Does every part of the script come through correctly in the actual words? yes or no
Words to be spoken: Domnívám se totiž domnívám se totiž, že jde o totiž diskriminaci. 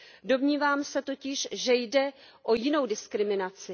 no